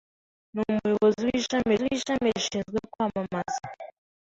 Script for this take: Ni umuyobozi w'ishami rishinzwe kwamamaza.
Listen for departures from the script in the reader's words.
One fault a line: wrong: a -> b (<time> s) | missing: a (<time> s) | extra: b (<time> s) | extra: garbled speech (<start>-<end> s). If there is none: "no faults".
extra: w'ishami (1.8 s)